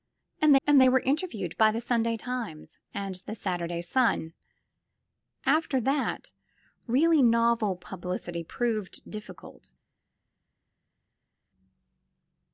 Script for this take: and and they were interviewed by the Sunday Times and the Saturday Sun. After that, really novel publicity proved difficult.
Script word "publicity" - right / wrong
right